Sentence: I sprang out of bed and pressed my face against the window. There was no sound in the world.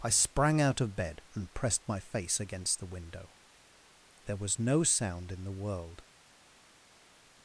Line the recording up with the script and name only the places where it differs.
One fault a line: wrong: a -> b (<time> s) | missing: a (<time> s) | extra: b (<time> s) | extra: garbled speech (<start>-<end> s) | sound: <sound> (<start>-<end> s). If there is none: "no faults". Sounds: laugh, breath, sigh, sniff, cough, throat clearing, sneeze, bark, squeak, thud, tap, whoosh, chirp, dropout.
no faults